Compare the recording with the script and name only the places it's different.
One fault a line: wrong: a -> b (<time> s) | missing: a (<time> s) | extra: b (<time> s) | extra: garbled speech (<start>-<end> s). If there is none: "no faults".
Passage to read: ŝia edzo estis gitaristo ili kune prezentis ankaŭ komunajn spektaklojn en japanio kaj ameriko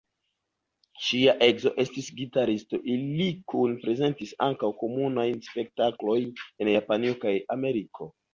no faults